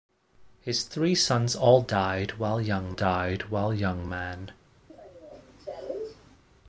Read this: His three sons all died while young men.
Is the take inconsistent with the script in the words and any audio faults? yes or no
yes